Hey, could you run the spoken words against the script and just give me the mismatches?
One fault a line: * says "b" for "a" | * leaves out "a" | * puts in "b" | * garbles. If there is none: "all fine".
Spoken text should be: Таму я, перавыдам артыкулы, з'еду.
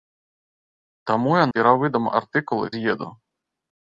all fine